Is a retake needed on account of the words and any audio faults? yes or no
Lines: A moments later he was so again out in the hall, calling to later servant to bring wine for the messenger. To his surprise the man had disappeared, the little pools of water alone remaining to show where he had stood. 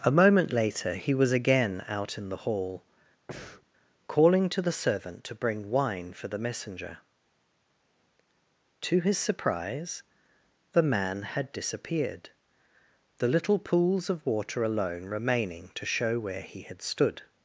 yes